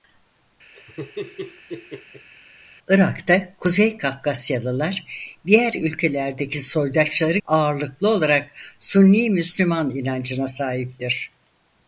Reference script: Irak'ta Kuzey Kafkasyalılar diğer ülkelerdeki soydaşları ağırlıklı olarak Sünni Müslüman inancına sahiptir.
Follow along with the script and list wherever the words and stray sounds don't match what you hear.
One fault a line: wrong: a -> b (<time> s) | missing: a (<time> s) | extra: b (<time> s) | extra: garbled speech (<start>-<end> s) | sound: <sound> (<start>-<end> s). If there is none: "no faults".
sound: laugh (0.7-2.3 s)